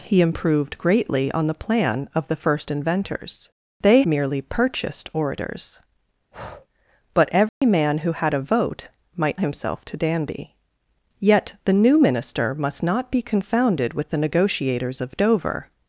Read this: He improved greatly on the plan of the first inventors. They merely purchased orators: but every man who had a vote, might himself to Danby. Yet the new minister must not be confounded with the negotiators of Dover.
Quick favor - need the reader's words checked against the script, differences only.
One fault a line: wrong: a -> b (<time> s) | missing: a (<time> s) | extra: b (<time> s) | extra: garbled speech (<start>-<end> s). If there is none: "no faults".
no faults